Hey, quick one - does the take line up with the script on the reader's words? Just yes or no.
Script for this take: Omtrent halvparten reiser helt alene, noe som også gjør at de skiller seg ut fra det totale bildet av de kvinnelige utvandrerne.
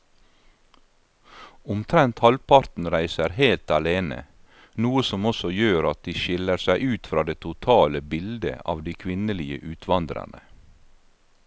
yes